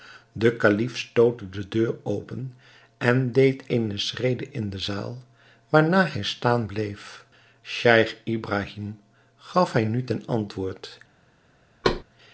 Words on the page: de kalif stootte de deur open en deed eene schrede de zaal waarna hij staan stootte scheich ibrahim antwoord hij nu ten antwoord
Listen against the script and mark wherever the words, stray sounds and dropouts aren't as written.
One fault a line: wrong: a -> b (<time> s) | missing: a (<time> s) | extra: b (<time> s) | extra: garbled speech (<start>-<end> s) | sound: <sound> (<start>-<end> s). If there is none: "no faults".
extra: in (4.5 s)
wrong: stootte -> bleef (6.7 s)
wrong: antwoord -> gaf (9.4 s)
sound: thud (11.8-12.0 s)